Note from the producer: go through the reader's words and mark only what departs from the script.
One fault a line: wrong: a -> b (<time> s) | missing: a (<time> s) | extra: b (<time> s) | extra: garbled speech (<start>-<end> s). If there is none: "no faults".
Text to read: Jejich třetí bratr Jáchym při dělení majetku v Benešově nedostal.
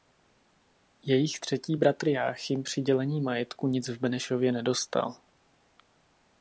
extra: nic (3.7 s)